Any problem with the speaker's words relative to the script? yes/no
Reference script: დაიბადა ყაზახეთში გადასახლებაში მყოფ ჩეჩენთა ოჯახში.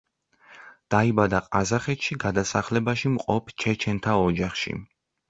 no